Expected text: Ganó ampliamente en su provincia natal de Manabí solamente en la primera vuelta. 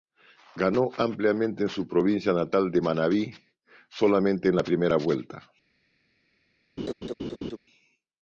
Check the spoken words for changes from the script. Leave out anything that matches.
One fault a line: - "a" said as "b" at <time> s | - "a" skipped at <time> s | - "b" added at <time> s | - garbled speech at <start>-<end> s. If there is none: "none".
none